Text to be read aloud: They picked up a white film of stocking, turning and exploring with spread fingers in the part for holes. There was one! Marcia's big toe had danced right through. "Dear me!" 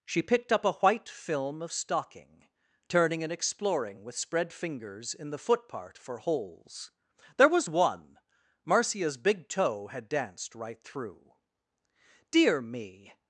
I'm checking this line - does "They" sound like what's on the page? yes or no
no